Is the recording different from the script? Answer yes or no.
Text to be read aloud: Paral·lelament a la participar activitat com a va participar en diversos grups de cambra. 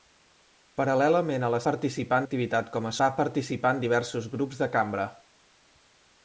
no